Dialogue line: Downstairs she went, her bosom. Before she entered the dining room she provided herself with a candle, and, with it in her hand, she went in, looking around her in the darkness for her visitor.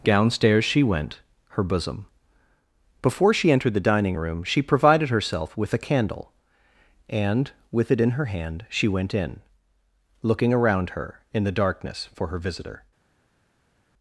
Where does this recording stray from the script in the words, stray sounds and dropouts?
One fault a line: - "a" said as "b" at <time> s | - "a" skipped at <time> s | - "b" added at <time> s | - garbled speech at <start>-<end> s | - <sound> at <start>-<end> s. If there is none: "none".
none